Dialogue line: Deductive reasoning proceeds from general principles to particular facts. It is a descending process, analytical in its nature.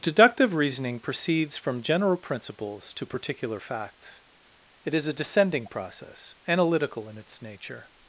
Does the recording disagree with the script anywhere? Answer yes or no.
no